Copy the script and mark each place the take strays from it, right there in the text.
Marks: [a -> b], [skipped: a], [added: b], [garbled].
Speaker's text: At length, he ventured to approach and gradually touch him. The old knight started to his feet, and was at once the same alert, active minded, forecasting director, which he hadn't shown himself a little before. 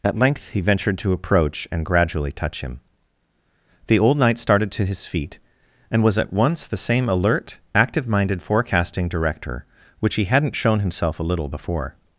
At length, he ventured to approach and gradually touch him. The old knight started to his feet, and was at once the same alert, active minded, forecasting director, which he hadn't shown himself a little before.